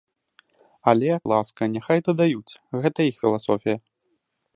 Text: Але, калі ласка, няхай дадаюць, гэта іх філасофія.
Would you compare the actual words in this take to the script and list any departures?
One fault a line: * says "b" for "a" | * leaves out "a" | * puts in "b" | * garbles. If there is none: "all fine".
* leaves out "калі"